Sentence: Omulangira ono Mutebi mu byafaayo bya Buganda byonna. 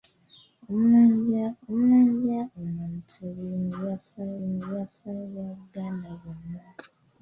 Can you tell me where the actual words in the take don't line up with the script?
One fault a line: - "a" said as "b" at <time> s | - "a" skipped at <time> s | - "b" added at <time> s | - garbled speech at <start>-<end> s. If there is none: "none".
- "omulangira" added at 1.7 s
- "mu byafaayo" added at 4.4 s